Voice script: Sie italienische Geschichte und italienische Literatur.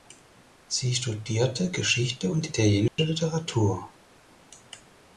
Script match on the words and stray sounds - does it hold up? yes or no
no